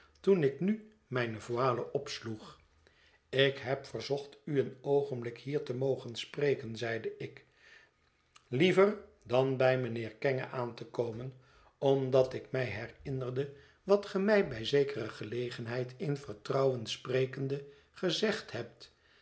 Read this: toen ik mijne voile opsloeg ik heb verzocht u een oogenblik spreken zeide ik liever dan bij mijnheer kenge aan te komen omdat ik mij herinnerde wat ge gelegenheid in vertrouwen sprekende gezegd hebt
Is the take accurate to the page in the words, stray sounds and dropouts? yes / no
no